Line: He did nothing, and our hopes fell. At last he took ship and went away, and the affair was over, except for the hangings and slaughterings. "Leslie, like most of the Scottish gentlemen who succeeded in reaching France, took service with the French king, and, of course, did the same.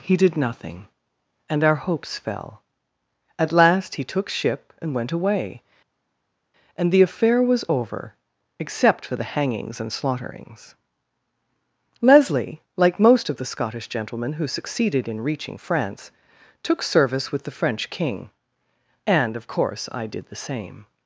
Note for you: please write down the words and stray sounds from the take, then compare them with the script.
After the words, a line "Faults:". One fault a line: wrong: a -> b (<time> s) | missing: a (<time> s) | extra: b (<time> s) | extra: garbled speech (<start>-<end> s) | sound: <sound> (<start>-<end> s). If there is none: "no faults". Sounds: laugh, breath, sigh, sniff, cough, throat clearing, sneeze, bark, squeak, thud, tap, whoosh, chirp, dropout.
He did nothing, and our hopes fell. At last he took ship and went away, and the affair was over, except for the hangings and slaughterings. "Leslie, like most of the Scottish gentlemen who succeeded in reaching France, took service with the French king, and, of course, I did the same.
Faults:
extra: I (19.9 s)